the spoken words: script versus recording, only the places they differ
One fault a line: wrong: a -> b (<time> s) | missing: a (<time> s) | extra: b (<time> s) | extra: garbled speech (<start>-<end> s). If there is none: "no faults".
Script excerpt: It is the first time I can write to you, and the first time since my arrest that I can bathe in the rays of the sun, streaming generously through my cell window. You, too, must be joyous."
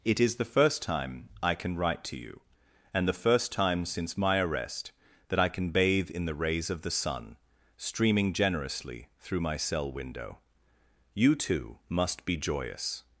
no faults